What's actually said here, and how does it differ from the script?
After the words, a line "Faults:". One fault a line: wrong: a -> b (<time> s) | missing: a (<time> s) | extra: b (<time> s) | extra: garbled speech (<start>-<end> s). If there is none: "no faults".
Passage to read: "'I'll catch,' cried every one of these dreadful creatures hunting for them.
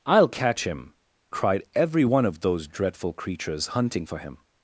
"'I'll catch him,' cried every one of those dreadful creatures hunting for him.
Faults:
extra: him (0.6 s)
wrong: these -> those (2.4 s)
wrong: them -> him (4.2 s)